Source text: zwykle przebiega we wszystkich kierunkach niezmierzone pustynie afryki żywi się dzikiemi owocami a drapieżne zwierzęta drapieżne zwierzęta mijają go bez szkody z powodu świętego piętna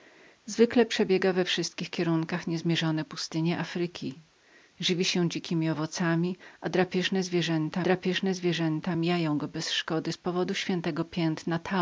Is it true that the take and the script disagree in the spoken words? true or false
false